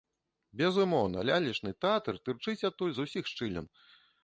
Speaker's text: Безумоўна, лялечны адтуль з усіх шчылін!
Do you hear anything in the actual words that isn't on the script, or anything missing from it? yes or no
yes